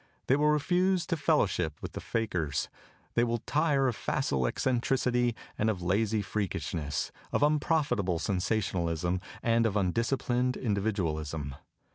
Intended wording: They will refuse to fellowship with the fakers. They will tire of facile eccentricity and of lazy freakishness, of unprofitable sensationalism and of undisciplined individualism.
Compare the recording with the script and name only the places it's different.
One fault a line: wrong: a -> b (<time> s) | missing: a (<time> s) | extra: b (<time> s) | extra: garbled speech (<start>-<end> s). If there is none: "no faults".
no faults